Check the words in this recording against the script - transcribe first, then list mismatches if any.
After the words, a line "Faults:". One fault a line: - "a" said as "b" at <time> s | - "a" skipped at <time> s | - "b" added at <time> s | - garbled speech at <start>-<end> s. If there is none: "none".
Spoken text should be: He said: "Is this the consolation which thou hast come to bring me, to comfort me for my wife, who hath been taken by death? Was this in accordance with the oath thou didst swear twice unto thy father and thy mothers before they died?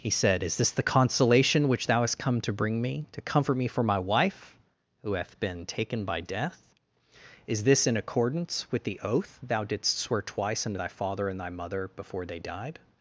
He said: "Is this the consolation which thou hast come to bring me, to comfort me for my wife, who hath been taken by death? Is this in accordance with the oath thou didst swear twice unto thy father and thy mother before they died?
Faults:
- "Was" said as "Is" at 7.5 s
- "mothers" said as "mother" at 11.5 s